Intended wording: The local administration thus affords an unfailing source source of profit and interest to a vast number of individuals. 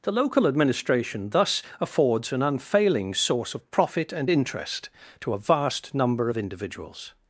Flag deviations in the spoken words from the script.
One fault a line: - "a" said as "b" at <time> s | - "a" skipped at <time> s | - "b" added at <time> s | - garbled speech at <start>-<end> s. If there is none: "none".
- "source" skipped at 3.5 s